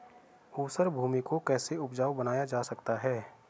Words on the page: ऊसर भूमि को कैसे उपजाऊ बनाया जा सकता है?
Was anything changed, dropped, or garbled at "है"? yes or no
no